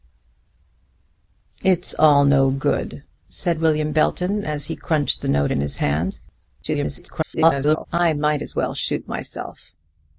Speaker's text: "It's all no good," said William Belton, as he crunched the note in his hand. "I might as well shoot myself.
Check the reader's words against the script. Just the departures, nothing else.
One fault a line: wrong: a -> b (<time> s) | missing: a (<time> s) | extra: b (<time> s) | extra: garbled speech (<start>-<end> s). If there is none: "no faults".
extra: garbled speech (6.6-7.9 s)